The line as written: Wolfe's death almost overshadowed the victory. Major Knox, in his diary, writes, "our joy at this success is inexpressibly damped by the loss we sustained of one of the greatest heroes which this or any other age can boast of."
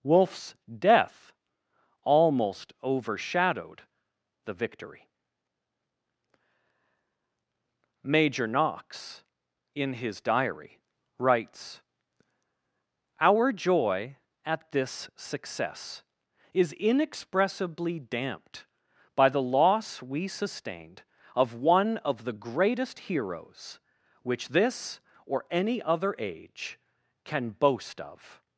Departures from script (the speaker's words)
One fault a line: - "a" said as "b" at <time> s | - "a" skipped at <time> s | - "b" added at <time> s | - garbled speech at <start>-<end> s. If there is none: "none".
none